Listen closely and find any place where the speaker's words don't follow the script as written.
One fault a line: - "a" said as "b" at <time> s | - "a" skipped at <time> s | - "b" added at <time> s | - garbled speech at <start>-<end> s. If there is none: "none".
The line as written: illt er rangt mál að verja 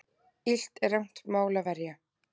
none